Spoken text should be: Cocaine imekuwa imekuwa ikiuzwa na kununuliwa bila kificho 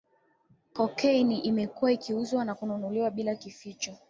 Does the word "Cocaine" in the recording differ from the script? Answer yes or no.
no